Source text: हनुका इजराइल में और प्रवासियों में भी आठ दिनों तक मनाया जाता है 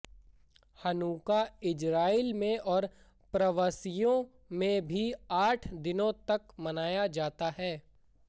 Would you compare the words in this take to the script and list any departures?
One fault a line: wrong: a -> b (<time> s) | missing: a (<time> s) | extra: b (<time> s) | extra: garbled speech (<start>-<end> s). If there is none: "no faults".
no faults